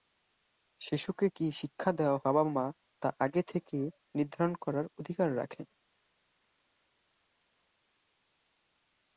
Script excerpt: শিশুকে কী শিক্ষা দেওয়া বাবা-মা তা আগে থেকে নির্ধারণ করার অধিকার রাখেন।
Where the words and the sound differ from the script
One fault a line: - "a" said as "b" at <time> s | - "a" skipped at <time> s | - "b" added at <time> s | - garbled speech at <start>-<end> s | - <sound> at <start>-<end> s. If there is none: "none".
none